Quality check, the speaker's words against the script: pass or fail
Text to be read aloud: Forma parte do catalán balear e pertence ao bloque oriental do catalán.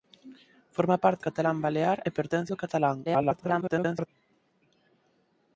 fail